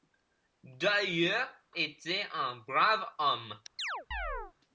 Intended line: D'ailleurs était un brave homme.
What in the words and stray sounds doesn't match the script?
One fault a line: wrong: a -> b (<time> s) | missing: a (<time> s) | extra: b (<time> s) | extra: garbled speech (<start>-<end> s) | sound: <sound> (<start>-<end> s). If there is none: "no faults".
sound: chirp (3.8-4.5 s)